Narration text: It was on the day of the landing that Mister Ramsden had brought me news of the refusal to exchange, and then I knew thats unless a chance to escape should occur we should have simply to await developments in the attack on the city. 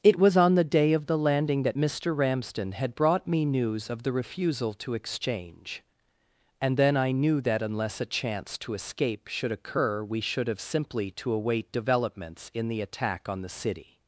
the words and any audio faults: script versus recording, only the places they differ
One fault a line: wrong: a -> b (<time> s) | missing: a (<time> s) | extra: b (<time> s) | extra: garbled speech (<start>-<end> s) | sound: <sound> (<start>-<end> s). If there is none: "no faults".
wrong: thats -> that (7.4 s)